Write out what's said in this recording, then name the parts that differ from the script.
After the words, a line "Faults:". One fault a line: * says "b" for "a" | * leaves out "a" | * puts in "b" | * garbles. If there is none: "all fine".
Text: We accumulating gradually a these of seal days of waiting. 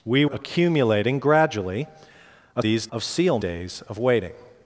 We accumulating gradually a these of seal days of waiting.
Faults:
all fine